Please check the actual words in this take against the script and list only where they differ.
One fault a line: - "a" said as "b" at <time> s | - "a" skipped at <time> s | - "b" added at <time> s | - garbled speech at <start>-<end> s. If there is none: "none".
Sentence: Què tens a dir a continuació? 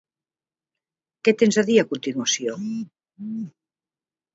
none